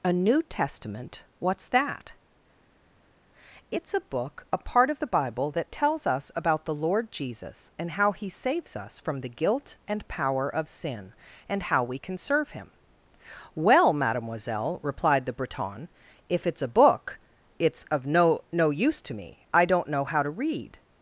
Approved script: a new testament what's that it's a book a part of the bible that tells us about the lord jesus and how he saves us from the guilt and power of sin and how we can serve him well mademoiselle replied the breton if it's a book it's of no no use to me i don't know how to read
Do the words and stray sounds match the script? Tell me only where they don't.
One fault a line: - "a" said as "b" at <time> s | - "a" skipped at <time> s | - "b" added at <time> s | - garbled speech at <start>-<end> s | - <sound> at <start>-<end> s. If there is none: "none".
none